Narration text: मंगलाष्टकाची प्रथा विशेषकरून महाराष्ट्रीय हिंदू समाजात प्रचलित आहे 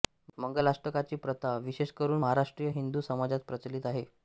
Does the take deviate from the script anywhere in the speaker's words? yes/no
no